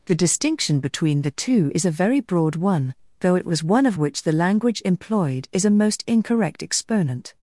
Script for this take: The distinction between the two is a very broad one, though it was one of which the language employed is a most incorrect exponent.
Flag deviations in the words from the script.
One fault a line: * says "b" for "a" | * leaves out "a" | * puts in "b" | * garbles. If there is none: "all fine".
all fine